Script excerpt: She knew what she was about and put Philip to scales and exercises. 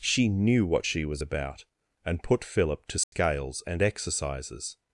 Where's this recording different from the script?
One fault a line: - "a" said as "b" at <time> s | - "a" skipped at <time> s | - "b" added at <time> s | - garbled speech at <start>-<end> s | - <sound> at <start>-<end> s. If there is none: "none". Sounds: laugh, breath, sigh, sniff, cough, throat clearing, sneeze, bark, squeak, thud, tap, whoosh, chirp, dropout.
- dropout at 3.0-3.1 s